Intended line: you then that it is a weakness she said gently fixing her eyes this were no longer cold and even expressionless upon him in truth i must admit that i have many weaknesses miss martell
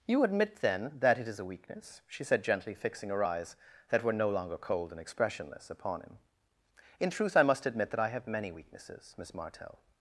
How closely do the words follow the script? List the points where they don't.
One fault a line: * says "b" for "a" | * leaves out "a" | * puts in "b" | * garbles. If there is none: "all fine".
* puts in "admit"
* says "that" for "this"
* leaves out "even"